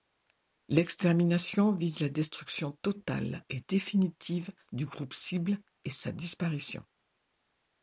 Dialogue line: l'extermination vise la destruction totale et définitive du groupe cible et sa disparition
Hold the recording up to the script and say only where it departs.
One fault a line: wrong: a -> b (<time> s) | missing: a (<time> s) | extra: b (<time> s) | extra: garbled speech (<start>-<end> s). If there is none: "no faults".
no faults